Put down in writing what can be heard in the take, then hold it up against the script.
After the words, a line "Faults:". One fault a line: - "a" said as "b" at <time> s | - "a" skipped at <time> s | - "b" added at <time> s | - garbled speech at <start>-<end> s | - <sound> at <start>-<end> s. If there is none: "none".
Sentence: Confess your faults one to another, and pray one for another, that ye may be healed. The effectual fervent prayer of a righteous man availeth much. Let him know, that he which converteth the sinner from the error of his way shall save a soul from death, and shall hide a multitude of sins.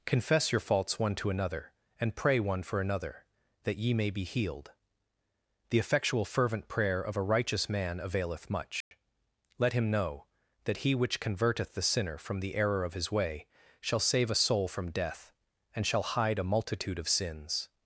Confess your faults one to another, and pray one for another, that ye may be healed. The effectual fervent prayer of a righteous man availeth much. Let him know, that he which converteth the sinner from the error of his way shall save a soul from death, and shall hide a multitude of sins.
Faults:
- dropout at 8.8-8.9 s